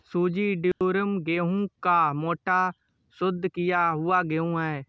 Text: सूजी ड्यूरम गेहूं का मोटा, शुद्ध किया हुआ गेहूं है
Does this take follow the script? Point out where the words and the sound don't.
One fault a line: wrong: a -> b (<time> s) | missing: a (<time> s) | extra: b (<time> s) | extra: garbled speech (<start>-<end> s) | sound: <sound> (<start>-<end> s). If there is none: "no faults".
sound: dropout (0.7-0.8 s)